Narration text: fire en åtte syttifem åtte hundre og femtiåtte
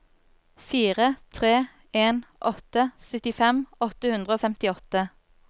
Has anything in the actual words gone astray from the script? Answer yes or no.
yes